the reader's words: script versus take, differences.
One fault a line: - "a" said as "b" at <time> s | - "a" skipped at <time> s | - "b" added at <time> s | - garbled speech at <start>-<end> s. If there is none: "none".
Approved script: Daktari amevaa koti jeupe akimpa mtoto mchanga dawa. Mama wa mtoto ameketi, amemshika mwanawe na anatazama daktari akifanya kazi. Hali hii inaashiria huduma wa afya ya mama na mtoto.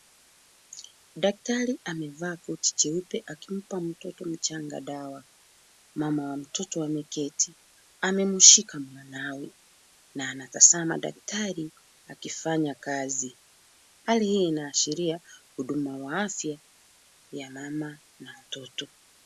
none